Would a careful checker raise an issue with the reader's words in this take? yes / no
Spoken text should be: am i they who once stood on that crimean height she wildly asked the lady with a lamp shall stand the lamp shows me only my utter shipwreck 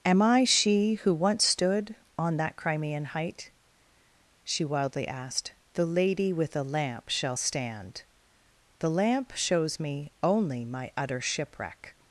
yes